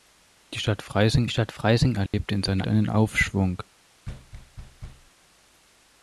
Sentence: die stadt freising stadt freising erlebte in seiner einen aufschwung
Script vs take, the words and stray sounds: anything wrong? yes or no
yes